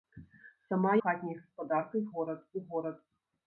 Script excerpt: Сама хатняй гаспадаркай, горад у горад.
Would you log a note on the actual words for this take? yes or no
no